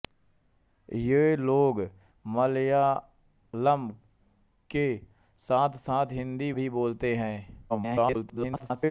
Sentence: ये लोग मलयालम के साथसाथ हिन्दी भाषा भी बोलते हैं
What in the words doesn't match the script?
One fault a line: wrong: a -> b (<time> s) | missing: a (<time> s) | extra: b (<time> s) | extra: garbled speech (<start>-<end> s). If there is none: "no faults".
missing: भाषा (6.5 s)
extra: garbled speech (7.7-8.9 s)